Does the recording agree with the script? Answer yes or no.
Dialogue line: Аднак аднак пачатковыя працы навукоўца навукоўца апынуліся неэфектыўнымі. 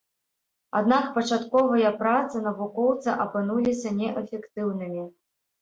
no